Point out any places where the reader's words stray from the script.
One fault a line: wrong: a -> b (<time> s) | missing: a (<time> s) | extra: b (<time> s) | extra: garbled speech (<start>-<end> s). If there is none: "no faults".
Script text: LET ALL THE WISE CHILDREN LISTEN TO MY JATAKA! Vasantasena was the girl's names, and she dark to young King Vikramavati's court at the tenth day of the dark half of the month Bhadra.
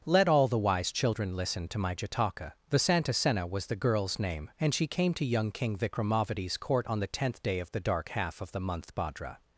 wrong: names -> name (4.2 s)
wrong: dark -> came (4.9 s)
wrong: at -> on (6.9 s)